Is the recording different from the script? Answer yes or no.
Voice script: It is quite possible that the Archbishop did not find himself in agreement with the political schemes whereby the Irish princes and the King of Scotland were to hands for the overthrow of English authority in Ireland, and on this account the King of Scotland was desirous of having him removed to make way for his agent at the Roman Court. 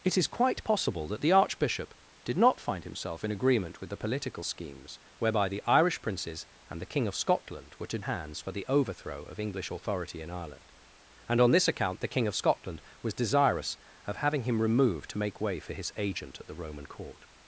no